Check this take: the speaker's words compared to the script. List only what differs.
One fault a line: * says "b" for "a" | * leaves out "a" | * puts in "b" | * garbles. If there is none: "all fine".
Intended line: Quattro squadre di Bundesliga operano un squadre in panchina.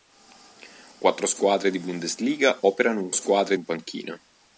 all fine